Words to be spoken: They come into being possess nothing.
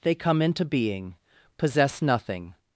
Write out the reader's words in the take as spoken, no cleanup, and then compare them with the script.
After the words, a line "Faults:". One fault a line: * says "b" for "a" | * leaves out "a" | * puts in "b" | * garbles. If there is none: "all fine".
They come into being possess nothing.
Faults:
all fine